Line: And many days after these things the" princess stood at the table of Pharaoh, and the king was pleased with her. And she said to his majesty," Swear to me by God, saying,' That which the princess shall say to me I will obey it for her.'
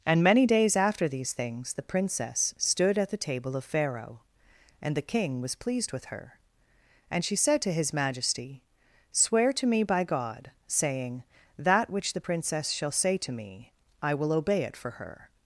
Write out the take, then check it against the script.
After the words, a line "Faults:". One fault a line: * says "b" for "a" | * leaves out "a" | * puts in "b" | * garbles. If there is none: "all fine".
And many days after these things the" princess stood at the table of Pharaoh, and the king was pleased with her. And she said to his majesty," Swear to me by God, saying,' That which the princess shall say to me I will obey it for her.'
Faults:
all fine